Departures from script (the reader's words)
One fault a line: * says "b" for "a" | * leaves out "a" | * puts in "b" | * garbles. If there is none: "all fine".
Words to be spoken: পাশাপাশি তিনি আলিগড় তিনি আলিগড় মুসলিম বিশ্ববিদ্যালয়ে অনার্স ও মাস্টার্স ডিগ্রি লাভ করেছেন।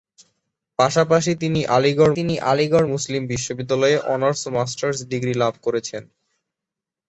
all fine